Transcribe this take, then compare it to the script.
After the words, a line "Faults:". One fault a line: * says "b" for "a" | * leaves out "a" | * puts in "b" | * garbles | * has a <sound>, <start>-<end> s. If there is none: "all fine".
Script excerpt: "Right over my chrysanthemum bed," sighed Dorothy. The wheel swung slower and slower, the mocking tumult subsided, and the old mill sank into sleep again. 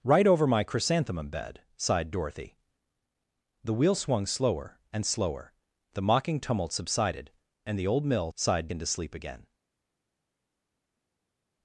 "Right over my chrysanthemum bed," sighed Dorothy. The wheel swung slower and slower, the mocking tumult subsided, and the old mill sighed into sleep again.
Faults:
* says "sighed" for "sank"